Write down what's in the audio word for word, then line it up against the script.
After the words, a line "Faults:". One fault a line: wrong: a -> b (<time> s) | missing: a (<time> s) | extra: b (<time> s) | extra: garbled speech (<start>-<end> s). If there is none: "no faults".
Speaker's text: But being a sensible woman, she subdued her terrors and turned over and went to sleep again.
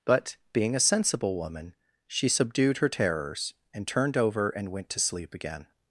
But being a sensible woman, she subdued her terrors and turned over and went to sleep again.
Faults:
no faults